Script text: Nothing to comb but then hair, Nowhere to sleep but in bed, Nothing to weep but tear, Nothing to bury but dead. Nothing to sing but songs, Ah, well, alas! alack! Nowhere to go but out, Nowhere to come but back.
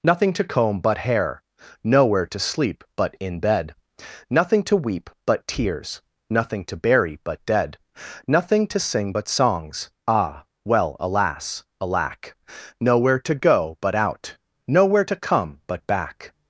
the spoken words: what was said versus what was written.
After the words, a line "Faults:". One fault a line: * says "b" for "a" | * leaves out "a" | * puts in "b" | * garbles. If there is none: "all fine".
Nothing to comb but hair, Nowhere to sleep but in bed, Nothing to weep but tears, Nothing to bury but dead. Nothing to sing but songs, Ah, well, alas! alack! Nowhere to go but out, Nowhere to come but back.
Faults:
* leaves out "then"
* says "tears" for "tear"